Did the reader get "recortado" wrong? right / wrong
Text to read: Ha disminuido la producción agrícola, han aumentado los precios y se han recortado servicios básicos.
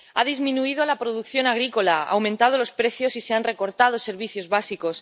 right